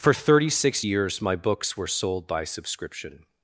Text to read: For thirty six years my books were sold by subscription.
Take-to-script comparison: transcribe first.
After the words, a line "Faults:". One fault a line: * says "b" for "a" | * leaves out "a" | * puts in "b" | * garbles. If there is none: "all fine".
For thirty six years my books were sold by subscription.
Faults:
all fine